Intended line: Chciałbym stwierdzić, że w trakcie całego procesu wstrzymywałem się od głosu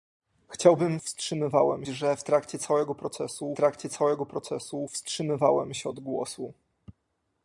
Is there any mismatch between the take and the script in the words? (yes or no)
yes